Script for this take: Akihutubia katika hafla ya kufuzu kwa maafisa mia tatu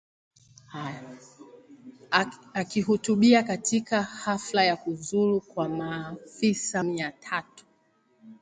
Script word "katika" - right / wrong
right